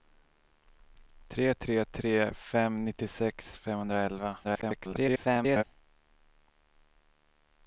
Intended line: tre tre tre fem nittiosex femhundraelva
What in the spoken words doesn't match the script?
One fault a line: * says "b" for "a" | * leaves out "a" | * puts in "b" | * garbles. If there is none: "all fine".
* garbles